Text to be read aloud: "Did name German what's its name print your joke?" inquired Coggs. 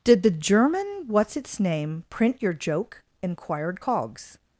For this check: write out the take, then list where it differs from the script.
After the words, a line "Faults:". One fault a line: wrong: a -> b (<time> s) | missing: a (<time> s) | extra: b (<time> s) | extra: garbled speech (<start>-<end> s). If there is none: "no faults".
"Did the German what's its name print your joke?" inquired Coggs.
Faults:
wrong: name -> the (0.2 s)